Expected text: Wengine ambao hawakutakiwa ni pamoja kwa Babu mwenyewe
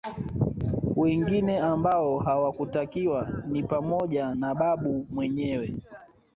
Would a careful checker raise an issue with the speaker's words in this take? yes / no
yes